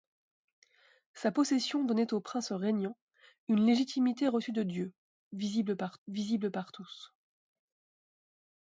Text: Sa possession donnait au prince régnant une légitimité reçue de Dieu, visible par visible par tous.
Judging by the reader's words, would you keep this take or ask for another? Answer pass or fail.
pass